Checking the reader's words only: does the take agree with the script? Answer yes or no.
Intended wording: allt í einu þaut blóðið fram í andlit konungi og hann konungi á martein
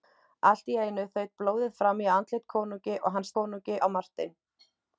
yes